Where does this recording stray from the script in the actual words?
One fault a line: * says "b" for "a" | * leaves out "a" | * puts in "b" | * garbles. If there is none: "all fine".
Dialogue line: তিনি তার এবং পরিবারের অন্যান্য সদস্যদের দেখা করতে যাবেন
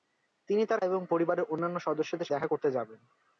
all fine